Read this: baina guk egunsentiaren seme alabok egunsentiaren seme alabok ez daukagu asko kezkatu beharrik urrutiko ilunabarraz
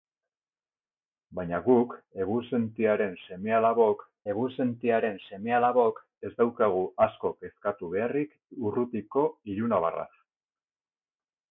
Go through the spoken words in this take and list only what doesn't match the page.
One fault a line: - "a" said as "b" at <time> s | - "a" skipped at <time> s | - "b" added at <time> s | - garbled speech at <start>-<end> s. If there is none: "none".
none